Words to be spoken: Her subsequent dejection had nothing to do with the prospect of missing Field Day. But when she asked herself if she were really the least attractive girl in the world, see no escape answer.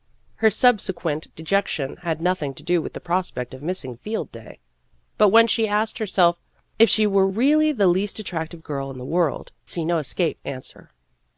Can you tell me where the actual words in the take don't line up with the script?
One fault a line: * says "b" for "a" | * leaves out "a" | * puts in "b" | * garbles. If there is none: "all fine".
all fine